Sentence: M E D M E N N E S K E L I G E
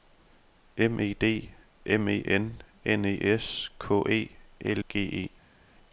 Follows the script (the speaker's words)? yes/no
no